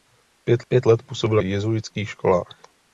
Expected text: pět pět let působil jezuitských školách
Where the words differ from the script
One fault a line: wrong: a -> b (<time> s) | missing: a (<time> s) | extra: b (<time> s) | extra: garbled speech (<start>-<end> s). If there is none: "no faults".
no faults